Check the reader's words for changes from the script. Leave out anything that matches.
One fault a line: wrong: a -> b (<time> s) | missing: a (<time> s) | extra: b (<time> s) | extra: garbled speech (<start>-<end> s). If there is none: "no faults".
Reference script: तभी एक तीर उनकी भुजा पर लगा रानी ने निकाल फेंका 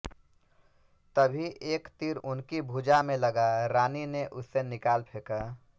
wrong: पर -> में (3.0 s)
extra: उसे (4.3 s)